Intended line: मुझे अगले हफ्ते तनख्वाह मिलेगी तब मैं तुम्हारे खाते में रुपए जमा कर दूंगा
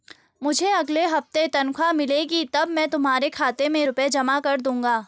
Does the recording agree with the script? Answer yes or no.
yes